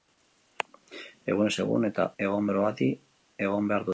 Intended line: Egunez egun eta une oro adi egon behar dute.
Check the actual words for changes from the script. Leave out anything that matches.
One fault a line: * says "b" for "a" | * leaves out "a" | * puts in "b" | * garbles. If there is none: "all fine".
* says "egon" for "une"